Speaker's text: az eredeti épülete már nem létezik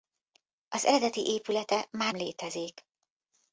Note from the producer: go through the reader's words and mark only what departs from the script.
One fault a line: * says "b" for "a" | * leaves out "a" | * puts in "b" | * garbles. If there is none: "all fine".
* leaves out "nem"